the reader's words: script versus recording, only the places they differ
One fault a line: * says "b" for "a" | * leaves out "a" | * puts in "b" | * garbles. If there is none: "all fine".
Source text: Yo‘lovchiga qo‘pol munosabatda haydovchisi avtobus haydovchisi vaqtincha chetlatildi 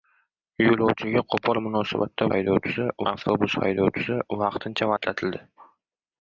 all fine